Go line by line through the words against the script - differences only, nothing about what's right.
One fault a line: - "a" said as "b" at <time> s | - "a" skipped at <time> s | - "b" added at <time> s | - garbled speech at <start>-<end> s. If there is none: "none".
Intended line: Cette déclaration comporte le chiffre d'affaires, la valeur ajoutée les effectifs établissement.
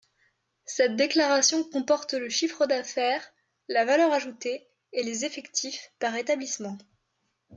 - "et" added at 4.9 s
- "par" added at 6.0 s